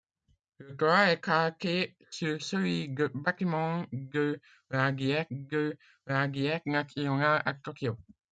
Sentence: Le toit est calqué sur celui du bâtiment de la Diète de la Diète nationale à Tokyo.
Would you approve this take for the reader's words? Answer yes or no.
yes